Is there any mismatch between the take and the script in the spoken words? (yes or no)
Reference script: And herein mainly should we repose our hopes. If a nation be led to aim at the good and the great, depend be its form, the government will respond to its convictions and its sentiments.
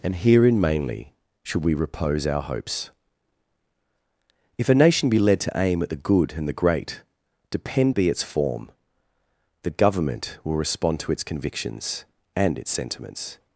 no